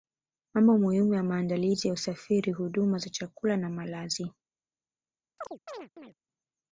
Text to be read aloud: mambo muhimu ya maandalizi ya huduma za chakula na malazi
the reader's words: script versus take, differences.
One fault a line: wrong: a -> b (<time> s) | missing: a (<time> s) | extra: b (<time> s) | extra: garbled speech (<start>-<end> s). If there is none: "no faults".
extra: usafiri (1.9 s)